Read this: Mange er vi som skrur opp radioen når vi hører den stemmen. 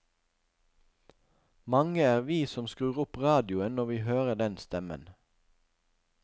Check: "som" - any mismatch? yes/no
no